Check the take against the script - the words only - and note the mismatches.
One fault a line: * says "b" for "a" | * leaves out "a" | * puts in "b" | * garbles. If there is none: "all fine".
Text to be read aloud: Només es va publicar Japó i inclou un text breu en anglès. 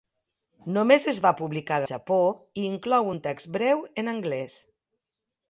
all fine